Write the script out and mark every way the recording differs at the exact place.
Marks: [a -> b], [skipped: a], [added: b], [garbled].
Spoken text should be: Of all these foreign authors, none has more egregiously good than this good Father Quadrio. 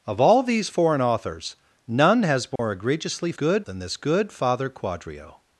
Of all these foreign authors, none has more egregiously good than this good Father Quadrio.